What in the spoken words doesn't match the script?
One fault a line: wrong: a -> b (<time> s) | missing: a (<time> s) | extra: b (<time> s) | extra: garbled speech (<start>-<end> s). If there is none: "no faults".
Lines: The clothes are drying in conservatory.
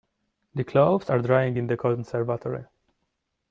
extra: the (1.7 s)